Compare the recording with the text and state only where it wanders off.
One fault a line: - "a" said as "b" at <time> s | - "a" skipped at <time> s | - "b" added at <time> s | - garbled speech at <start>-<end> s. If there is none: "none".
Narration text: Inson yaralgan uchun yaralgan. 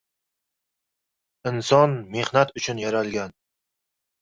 - "yaralgan" said as "mehnat" at 2.2 s